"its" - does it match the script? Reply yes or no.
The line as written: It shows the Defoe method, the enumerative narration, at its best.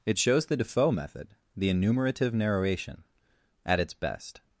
yes